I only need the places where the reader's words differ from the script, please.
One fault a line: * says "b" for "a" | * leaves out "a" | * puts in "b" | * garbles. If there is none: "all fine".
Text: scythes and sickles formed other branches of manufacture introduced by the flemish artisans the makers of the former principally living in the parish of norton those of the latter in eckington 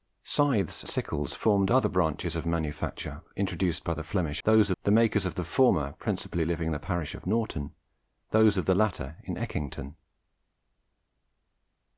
* leaves out "and"
* says "those" for "artisans"